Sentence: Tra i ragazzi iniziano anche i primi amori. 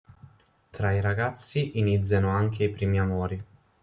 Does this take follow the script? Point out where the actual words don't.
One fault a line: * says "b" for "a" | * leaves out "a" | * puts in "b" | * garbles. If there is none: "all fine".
all fine